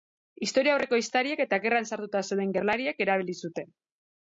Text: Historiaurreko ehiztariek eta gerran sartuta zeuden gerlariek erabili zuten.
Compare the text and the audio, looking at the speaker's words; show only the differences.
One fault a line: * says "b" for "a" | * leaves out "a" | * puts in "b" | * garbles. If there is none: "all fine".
all fine